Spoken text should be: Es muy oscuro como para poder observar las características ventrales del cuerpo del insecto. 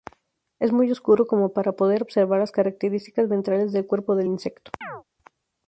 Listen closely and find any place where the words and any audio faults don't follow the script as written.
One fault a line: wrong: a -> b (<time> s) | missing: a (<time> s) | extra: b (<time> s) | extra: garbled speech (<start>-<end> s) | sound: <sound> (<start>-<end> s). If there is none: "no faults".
sound: chirp (4.8-5.0 s)